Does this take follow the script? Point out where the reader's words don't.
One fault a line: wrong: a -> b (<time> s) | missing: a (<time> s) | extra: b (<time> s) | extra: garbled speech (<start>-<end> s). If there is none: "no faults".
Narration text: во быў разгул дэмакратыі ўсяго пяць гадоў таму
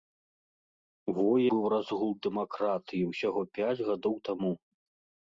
no faults